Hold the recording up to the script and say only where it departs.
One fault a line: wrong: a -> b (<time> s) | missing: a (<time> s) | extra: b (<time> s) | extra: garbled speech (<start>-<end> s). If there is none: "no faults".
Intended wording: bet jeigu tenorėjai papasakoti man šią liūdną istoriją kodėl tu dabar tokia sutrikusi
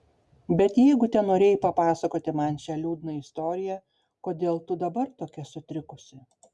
no faults